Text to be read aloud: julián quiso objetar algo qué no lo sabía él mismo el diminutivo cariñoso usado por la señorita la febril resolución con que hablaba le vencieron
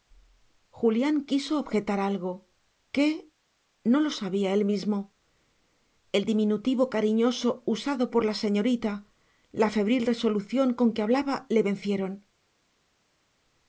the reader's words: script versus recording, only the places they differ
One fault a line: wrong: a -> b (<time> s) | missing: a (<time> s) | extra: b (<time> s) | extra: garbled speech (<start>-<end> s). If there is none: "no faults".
no faults